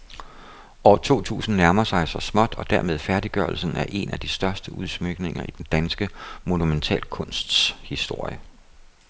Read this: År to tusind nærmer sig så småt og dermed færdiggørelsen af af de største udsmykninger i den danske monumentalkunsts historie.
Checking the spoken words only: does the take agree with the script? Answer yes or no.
no